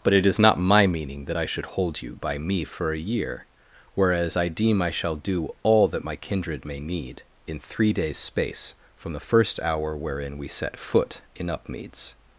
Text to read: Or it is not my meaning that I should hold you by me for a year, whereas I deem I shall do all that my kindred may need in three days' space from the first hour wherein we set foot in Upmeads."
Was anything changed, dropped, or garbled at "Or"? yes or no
yes